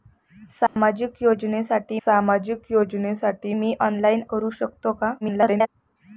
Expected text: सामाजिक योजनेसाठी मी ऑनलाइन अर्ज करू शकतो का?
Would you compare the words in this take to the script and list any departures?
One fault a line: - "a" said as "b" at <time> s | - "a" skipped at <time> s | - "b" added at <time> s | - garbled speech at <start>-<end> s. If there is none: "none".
- "सामाजिक योजनेसाठी" added at 2.1 s
- "अर्ज" skipped at 4.2 s
- garbled speech at 5.2-5.7 s